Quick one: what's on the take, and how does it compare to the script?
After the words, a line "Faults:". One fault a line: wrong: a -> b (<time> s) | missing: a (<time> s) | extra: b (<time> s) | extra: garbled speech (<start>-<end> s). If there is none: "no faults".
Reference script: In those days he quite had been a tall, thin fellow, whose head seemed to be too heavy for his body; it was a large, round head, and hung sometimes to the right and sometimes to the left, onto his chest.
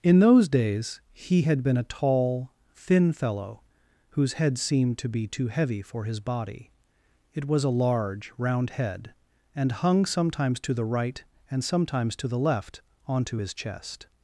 In those days he had been a tall, thin fellow, whose head seemed to be too heavy for his body; it was a large, round head, and hung sometimes to the right and sometimes to the left, onto his chest.
Faults:
missing: quite (1.4 s)